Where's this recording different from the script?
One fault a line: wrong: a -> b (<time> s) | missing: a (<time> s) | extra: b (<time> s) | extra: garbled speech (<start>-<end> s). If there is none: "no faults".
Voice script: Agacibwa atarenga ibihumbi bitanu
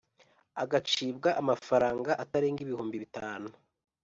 extra: amafaranga (1.4 s)